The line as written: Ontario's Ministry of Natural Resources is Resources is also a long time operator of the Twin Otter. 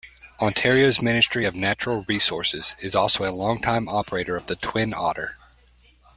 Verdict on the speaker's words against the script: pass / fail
fail